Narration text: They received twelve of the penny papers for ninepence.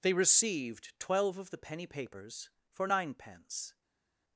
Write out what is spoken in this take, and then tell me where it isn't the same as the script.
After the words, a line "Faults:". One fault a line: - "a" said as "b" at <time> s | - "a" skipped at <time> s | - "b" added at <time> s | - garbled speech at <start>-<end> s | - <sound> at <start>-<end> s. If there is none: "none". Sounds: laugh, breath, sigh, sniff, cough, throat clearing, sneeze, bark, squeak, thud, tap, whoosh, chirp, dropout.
They received twelve of the penny papers for ninepence.
Faults:
none